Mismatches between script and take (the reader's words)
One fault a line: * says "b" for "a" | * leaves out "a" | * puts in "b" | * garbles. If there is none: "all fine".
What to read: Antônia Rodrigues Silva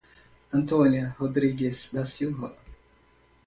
* puts in "da"